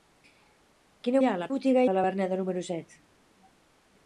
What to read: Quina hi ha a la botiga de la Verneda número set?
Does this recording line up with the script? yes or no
yes